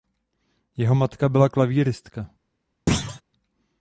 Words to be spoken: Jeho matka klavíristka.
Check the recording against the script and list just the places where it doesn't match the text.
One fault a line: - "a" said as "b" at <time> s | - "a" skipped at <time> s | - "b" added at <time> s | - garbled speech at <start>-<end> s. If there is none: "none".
- "byla" added at 1.3 s